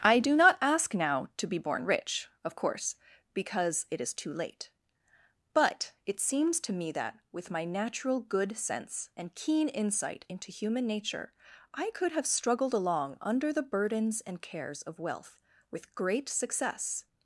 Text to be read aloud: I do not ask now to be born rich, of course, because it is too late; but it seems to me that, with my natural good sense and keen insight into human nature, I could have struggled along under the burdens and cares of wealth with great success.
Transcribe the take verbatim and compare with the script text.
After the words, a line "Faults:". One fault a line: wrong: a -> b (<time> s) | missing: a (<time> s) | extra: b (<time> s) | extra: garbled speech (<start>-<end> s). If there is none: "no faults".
I do not ask now to be born rich, of course, because it is too late; but it seems to me that, with my natural good sense and keen insight into human nature, I could have struggled along under the burdens and cares of wealth with great success.
Faults:
no faults